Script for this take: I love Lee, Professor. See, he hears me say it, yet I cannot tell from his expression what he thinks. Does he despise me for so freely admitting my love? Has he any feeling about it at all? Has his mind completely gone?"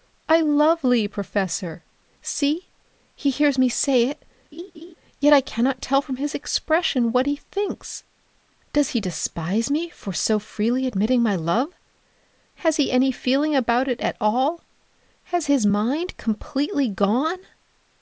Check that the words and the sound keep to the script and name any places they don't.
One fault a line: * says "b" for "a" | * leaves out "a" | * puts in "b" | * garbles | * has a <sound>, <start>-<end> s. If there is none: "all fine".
* has a laugh, 4.5-5.0 s